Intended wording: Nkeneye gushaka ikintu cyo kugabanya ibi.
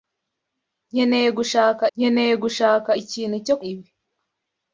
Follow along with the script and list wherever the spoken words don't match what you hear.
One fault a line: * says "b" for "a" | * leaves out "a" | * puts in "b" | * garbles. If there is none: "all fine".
* puts in "nkeneye gushaka"
* leaves out "kugabanya"